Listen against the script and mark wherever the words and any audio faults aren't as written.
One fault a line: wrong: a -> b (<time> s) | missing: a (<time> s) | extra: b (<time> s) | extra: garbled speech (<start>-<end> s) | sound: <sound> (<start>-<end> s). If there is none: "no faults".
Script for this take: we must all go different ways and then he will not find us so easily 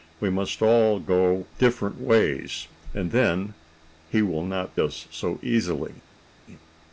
missing: find (4.7 s)